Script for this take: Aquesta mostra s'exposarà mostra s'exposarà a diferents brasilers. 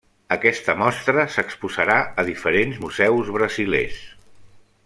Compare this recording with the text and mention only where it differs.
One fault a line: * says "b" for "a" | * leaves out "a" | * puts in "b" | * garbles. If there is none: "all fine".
* leaves out "mostra s'exposarà"
* puts in "museus"